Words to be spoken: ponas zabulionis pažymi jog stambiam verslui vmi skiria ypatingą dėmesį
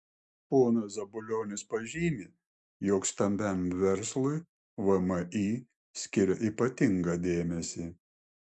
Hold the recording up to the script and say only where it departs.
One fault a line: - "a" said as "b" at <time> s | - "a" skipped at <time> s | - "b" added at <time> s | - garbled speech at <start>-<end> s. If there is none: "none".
none